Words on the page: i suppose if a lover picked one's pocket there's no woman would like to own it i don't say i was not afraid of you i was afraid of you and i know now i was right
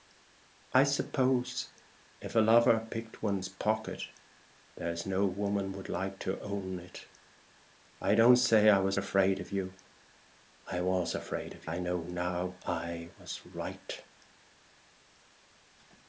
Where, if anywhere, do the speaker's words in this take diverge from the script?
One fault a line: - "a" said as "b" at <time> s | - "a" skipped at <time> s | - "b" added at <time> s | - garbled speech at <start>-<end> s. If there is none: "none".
- "not" skipped at 9.0 s
- "you and" skipped at 11.7 s